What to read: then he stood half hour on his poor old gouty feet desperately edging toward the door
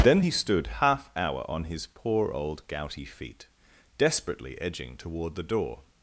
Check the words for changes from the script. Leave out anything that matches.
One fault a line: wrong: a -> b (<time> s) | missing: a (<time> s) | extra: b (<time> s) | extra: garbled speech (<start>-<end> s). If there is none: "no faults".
no faults